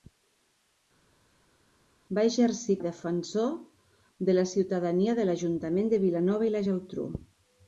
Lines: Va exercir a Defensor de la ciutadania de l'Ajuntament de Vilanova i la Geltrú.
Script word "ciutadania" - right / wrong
right